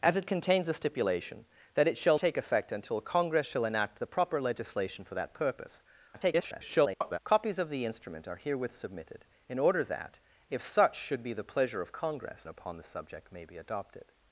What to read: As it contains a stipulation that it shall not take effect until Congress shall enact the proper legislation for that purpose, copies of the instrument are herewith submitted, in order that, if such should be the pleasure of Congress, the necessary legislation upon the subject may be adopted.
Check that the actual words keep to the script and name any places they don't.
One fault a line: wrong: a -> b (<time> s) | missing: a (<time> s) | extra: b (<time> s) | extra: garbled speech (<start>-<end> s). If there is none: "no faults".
missing: not (2.2 s)
extra: garbled speech (6.1-7.2 s)
missing: the necessary legislation (12.4 s)